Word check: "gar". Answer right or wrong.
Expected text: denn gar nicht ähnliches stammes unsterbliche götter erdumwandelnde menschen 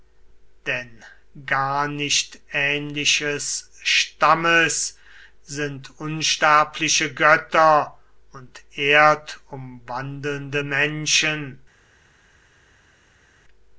right